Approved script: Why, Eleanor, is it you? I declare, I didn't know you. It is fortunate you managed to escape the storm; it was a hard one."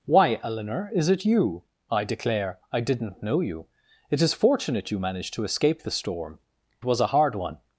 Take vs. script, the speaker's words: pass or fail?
fail